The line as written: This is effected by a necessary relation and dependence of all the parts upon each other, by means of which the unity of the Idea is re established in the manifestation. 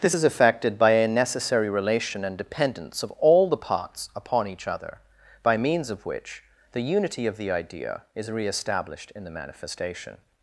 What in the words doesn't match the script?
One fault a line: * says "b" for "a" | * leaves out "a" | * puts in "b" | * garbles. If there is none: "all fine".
all fine